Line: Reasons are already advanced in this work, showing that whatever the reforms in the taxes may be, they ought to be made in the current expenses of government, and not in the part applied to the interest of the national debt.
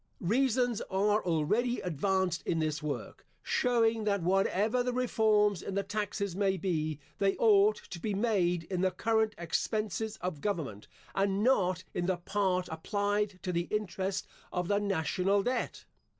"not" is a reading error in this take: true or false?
false